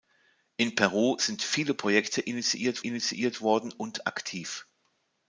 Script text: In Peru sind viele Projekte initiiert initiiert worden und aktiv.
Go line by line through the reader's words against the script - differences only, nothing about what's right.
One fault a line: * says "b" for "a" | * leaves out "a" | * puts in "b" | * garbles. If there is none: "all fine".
all fine